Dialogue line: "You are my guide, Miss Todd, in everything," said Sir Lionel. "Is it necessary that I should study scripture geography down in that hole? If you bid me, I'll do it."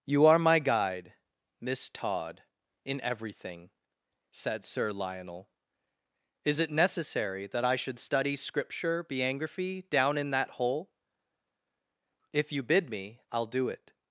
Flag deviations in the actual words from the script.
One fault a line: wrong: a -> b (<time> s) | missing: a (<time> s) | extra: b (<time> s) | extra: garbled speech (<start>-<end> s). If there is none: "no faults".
wrong: geography -> biography (9.0 s)